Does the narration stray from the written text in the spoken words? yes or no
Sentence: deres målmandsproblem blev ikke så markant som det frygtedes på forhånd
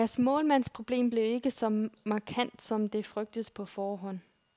no